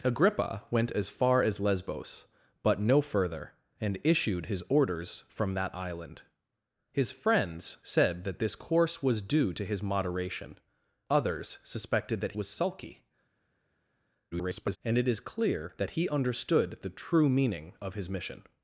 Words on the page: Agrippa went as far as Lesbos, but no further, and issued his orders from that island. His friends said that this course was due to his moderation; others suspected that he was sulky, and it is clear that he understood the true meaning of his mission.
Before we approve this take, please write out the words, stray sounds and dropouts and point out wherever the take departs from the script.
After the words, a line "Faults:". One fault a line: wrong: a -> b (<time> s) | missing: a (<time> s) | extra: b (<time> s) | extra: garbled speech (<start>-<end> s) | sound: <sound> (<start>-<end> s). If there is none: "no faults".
Agrippa went as far as Lesbos, but no further, and issued his orders from that island. His friends said that this course was due to his moderation; others suspected that was sulky, [garbled] and it is clear that he understood the true meaning of his mission.
Faults:
missing: he (12.4 s)
extra: garbled speech (14.3-14.8 s)